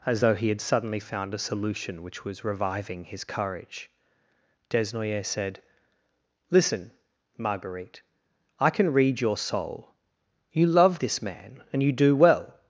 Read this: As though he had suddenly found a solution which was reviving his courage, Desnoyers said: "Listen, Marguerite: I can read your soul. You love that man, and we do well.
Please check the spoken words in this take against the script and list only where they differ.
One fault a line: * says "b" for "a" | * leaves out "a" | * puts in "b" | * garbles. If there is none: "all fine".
* says "this" for "that"
* says "you" for "we"